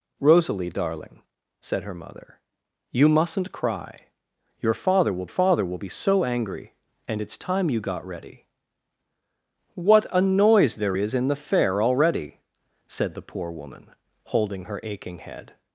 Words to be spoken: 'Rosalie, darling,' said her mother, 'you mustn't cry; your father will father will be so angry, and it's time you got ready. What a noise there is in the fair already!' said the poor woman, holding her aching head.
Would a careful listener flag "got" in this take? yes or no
no